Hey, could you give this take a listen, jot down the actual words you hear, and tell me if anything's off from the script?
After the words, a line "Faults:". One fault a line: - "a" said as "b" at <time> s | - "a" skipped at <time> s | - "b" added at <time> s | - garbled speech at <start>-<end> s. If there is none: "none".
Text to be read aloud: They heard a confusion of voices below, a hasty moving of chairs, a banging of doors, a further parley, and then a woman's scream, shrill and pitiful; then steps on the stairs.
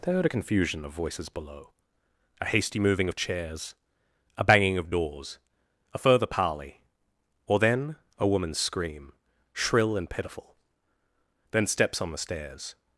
They heard a confusion of voices below, a hasty moving of chairs, a banging of doors, a further parley, or then a woman's scream, shrill and pitiful; then steps on the stairs.
Faults:
- "and" said as "or" at 7.5 s